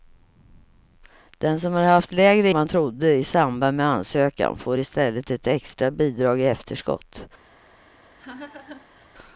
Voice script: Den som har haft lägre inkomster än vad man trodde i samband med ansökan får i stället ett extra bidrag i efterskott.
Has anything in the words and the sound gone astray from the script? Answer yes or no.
yes